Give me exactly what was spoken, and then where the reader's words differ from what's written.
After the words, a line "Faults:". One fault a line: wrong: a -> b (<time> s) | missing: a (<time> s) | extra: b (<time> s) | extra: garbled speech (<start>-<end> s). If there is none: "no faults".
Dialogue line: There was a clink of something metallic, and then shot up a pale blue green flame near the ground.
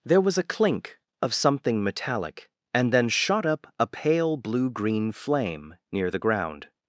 There was a clink of something metallic, and then shot up a pale blue green flame near the ground.
Faults:
no faults